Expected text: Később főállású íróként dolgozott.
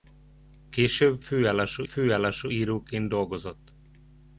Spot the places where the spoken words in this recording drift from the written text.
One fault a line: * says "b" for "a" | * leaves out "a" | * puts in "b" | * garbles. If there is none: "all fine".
* puts in "főállású"